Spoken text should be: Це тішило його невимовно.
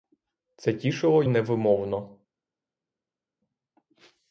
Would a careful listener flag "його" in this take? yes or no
yes